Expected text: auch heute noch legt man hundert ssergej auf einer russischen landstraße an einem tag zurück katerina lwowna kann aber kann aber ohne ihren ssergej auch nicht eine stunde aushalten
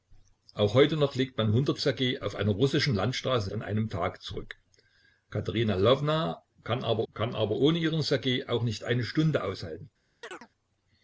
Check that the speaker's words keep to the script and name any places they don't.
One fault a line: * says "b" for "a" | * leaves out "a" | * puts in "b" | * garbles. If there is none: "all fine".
all fine